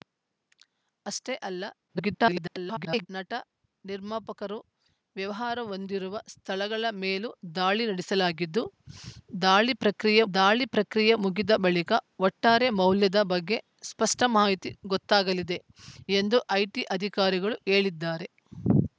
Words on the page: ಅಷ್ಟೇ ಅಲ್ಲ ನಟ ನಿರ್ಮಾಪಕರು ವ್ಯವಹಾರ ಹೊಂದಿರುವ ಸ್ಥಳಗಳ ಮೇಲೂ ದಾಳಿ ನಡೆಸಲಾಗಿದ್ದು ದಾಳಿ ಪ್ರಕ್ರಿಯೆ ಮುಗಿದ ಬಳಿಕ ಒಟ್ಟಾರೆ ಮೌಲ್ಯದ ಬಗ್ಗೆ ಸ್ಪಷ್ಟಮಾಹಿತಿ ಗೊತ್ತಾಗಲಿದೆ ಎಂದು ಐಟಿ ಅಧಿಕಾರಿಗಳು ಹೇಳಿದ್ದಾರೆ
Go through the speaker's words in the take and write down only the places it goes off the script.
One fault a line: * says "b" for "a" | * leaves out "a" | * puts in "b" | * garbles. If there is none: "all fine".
* garbles
* puts in "ದಾಳಿ ಪ್ರಕ್ರಿಯೆ"